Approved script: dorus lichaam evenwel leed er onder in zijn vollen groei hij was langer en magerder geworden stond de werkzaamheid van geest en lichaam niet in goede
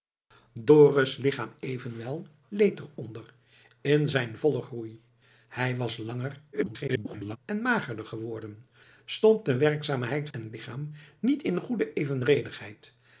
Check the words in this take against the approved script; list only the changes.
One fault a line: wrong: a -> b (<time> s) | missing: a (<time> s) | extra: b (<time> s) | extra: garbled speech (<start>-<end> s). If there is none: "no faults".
extra: garbled speech (6.5-7.4 s)
missing: van geest (10.3 s)